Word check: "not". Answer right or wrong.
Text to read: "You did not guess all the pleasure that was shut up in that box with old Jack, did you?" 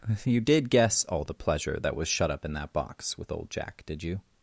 wrong